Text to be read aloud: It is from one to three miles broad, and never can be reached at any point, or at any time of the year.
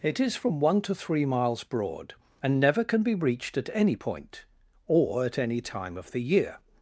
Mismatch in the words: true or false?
false